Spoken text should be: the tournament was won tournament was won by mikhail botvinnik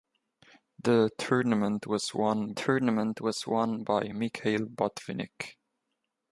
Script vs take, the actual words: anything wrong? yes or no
no